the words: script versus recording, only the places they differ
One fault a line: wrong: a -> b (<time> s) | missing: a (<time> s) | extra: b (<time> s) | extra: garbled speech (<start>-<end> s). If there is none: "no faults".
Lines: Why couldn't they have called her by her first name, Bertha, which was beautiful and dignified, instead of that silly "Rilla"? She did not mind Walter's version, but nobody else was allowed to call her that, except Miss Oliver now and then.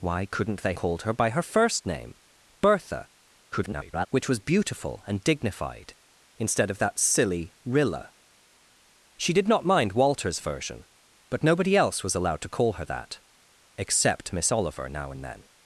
missing: have (0.7 s)
extra: garbled speech (3.5-4.1 s)